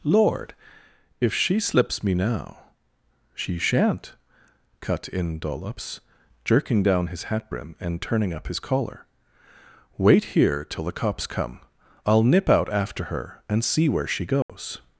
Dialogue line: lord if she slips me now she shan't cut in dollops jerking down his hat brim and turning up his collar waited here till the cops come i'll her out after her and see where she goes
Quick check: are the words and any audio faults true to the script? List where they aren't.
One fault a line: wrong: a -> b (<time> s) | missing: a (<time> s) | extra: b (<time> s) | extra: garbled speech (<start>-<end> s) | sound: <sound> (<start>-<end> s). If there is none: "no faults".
wrong: waited -> wait (10.0 s)
wrong: her -> nip (12.2 s)
sound: dropout (14.4-14.5 s)